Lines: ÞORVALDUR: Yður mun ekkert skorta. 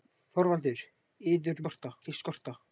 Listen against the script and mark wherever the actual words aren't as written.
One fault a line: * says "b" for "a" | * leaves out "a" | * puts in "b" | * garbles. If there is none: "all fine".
* says "skorta" for "mun"